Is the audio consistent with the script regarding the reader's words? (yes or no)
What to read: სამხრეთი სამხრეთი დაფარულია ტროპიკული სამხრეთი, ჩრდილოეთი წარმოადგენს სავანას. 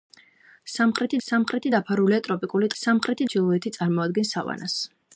yes